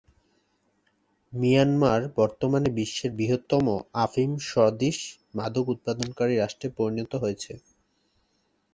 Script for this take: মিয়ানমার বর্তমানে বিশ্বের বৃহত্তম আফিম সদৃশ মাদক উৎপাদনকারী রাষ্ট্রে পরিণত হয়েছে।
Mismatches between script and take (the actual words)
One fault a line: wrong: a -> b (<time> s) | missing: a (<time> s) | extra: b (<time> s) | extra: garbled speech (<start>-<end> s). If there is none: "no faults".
no faults